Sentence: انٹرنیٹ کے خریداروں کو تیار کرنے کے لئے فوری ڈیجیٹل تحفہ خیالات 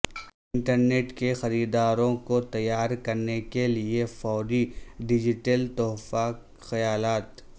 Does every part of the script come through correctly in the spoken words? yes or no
yes